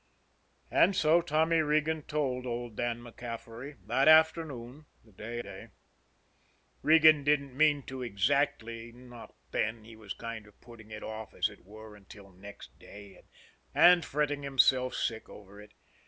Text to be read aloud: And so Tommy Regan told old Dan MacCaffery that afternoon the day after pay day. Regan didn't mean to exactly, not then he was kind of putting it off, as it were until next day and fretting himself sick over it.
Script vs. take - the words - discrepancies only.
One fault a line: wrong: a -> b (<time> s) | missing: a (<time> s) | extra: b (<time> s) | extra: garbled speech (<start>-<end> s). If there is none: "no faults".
missing: after pay (5.4 s)